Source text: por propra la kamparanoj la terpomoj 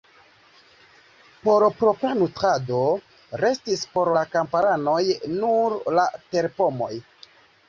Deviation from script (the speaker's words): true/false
true